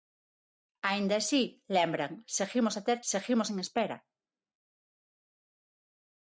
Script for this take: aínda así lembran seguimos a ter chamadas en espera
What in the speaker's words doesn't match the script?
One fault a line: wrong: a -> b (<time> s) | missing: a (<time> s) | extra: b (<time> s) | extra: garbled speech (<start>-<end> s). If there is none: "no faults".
wrong: chamadas -> seguimos (3.1 s)